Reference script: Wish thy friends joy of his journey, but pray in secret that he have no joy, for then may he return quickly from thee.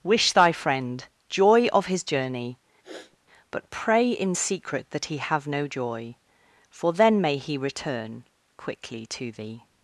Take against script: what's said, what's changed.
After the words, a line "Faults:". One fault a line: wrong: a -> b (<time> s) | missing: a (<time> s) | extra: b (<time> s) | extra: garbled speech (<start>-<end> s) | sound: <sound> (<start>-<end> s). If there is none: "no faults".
Wish thy friend joy of his journey, but pray in secret that he have no joy, for then may he return quickly to thee.
Faults:
wrong: friends -> friend (0.5 s)
sound: sniff (2.8-3.2 s)
wrong: from -> to (9.1 s)